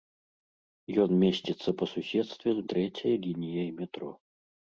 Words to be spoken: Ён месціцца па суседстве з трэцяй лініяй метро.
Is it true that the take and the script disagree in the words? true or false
false